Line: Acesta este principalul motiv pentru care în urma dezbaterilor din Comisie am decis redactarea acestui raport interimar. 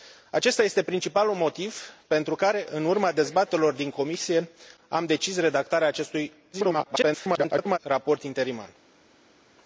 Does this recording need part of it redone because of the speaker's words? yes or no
yes